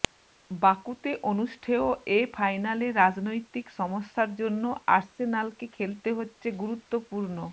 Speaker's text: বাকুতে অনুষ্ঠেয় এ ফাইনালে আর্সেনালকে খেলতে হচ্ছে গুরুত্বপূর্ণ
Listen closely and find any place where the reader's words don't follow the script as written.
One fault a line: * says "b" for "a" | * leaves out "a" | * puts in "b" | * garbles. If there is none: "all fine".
* puts in "রাজনৈতিক সমস্যার জন্য"